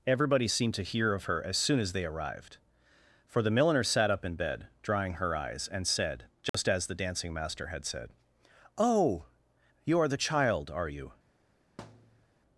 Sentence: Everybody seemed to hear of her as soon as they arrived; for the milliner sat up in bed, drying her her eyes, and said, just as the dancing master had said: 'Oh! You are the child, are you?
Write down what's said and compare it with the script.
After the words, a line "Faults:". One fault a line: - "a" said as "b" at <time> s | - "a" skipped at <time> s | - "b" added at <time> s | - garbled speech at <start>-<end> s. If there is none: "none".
Everybody seemed to hear of her as soon as they arrived; for the milliner sat up in bed, drying her eyes, and said, just as the dancing master had said: 'Oh! You are the child, are you?
Faults:
- "her" skipped at 5.3 s